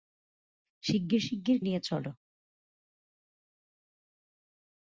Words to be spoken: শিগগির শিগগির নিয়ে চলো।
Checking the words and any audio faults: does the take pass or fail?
pass